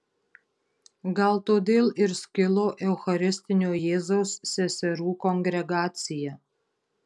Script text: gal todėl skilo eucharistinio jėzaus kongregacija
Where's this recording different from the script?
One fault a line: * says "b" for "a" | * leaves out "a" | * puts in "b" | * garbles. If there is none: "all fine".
* puts in "ir"
* puts in "seserų"